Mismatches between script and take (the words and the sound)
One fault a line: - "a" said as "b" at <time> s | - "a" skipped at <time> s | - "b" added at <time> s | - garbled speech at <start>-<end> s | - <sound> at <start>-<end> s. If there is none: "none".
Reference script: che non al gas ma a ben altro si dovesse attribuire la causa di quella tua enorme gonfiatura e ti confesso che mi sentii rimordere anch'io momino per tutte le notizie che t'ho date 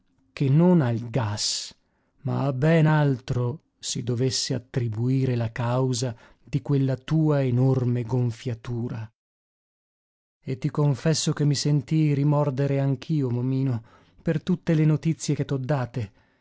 none